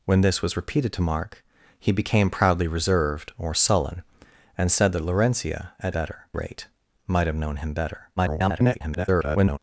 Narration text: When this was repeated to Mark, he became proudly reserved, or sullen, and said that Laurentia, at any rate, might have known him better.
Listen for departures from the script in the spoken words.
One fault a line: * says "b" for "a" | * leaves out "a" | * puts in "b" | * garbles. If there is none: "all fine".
* says "better" for "any"
* garbles